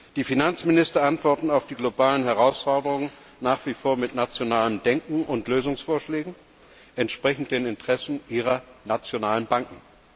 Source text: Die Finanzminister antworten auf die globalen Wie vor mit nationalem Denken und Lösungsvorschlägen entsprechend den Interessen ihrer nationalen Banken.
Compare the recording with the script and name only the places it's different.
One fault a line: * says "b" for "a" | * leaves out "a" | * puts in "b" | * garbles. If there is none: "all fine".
* puts in "Herausforderungen nach"